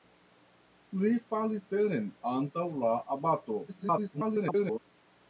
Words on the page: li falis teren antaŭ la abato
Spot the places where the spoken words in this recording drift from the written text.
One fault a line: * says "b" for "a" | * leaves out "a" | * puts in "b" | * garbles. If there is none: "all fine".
* garbles